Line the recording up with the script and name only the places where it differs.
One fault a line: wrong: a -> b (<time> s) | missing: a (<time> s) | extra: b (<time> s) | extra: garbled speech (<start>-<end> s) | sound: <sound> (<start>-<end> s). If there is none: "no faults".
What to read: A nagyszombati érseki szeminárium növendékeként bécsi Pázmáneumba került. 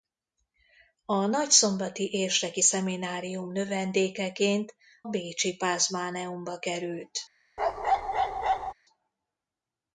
sound: bark (7.6-8.7 s)